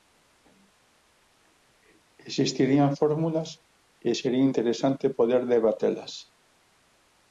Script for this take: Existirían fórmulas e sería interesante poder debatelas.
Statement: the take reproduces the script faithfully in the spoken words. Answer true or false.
true